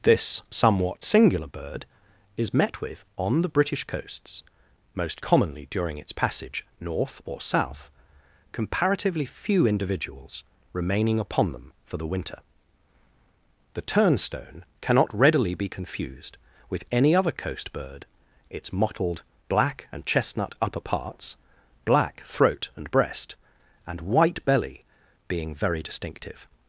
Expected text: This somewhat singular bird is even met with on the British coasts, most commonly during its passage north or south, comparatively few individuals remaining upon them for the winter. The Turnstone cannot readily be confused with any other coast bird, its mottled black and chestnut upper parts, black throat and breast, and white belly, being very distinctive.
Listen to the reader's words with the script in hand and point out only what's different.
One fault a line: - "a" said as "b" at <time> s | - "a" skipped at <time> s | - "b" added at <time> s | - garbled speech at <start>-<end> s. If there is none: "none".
- "even" skipped at 2.5 s